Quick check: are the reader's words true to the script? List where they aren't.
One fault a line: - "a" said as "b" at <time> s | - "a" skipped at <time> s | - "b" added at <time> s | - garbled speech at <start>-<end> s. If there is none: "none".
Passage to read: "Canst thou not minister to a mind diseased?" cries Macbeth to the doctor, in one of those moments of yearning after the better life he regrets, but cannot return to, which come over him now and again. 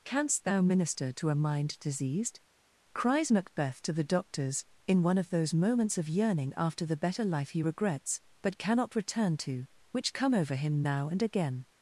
- "not" skipped at 0.6 s
- "doctor" said as "doctors" at 4.0 s